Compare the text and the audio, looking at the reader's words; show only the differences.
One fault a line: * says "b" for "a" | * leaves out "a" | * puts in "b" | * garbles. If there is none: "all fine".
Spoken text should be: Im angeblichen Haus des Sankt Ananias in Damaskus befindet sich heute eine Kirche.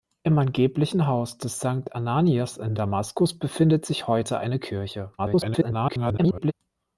* garbles